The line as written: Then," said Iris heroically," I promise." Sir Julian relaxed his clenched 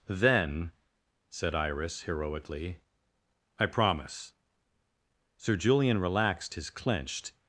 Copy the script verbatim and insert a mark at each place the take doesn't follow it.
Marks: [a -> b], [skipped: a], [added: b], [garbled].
Then," said Iris heroically," I promise." Sir Julian relaxed his clenched